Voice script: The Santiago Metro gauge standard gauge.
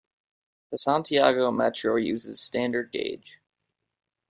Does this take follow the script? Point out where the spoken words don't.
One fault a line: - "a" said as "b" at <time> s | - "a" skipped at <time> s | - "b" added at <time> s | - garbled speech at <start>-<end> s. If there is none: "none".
- "gauge" said as "uses" at 2.0 s